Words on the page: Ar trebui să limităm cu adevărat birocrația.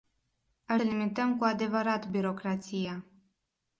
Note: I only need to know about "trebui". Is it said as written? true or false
false